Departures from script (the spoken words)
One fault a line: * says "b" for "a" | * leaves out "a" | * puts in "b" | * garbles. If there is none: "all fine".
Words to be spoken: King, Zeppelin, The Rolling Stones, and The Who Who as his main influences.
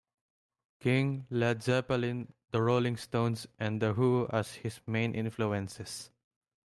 * puts in "Led"
* leaves out "Who"